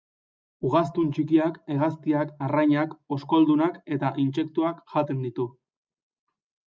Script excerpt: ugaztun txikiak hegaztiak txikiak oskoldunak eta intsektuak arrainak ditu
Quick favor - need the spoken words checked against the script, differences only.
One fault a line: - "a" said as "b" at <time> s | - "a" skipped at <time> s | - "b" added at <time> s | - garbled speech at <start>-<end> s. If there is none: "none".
- "txikiak" said as "arrainak" at 2.5 s
- "arrainak" said as "jaten" at 4.9 s